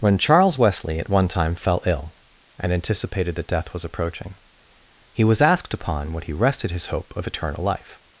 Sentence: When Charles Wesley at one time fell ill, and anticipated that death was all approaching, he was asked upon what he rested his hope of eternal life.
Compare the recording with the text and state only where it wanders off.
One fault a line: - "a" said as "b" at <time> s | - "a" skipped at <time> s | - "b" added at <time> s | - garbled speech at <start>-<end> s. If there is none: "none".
- "all" skipped at 3.9 s